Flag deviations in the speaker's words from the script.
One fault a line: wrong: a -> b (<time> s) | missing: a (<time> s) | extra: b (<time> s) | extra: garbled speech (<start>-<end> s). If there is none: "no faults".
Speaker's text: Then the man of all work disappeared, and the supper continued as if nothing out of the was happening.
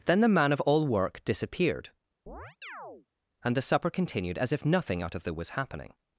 no faults